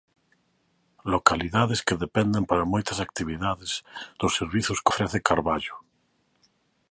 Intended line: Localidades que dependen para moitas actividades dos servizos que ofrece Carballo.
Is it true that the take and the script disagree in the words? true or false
false